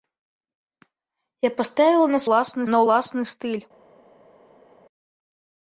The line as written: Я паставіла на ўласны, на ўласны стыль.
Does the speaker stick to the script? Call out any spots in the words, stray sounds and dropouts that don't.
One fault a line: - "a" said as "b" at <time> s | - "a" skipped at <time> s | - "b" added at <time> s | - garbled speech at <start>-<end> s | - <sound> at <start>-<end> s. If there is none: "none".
none